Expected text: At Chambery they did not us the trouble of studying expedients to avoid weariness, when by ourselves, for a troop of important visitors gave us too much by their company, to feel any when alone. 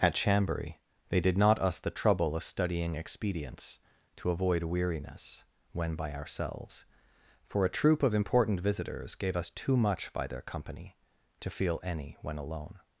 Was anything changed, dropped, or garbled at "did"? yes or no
no